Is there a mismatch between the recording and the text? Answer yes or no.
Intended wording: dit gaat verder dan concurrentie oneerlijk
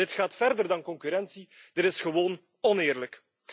yes